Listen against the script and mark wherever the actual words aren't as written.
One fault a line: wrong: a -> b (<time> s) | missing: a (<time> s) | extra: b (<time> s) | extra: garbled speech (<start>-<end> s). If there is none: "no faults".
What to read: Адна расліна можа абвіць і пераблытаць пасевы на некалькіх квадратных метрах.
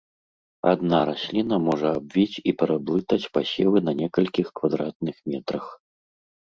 no faults